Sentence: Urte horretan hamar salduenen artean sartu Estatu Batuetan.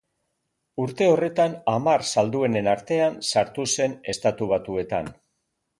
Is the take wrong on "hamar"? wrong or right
right